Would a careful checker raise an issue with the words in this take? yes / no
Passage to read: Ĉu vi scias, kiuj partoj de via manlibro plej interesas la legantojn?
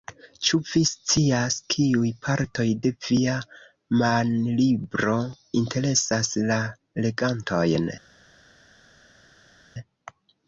yes